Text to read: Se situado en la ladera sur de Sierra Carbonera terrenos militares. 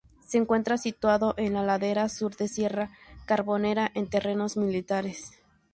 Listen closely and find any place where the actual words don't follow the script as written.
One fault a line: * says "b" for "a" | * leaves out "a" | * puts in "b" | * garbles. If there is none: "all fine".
* puts in "encuentra"
* puts in "en"